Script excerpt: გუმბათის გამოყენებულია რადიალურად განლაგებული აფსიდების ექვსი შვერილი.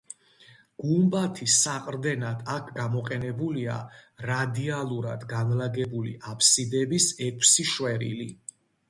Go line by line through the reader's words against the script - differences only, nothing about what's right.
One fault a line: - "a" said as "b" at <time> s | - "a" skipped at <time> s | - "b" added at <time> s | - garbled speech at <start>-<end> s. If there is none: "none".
- "საყრდენად აქ" added at 1.6 s